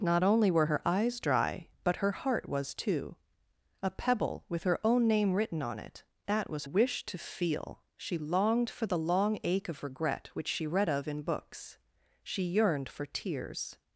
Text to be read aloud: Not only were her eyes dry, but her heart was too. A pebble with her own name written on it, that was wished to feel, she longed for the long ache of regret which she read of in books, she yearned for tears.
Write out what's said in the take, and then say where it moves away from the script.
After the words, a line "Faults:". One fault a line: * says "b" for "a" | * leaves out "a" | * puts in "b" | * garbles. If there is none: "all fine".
Not only were her eyes dry, but her heart was too. A pebble with her own name written on it, that was wished to feel, she longed for the long ache of regret which she read of in books, she yearned for tears.
Faults:
all fine